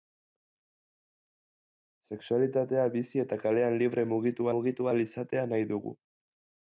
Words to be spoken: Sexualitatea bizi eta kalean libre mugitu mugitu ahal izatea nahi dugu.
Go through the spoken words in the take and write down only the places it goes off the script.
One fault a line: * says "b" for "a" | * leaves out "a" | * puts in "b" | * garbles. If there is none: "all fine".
all fine